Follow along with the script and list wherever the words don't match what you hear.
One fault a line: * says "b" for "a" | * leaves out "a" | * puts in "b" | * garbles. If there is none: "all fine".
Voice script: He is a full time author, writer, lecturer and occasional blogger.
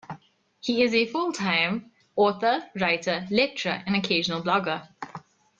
all fine